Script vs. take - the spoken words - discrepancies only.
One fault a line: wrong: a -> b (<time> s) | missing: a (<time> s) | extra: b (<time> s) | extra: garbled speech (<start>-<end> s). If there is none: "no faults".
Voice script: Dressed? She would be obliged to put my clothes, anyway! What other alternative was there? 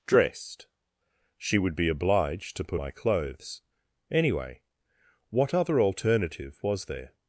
no faults